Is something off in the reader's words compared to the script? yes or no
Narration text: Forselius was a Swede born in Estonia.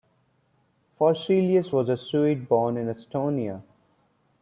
no